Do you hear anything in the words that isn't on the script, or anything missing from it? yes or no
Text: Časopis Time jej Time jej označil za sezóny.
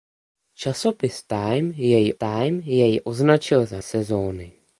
no